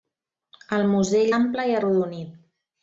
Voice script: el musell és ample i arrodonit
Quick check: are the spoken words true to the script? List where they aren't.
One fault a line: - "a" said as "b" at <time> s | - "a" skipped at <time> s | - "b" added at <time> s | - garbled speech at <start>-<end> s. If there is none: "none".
- "és" skipped at 1.3 s